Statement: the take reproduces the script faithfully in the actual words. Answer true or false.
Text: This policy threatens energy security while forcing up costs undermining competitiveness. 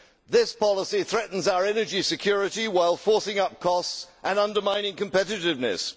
false